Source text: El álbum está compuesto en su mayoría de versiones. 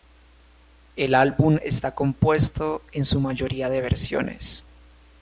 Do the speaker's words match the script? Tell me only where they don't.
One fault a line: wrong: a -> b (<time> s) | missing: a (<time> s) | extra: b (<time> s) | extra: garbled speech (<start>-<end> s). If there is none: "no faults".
no faults